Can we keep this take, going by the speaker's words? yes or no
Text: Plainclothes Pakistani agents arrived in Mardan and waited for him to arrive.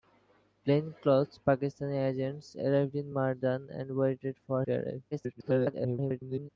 no